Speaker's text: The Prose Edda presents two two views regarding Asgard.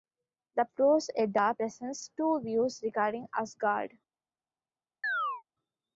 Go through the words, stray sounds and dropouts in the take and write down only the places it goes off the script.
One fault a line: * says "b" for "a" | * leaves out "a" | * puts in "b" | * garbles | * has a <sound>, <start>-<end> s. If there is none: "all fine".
* leaves out "two"
* has a chirp, 5.0-5.4 s